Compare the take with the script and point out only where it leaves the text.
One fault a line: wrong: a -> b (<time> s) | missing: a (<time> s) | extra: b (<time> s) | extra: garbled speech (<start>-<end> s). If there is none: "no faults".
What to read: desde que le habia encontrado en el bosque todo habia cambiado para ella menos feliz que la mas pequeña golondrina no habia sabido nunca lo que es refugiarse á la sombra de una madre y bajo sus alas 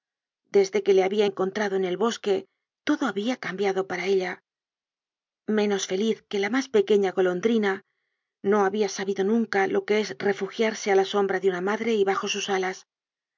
no faults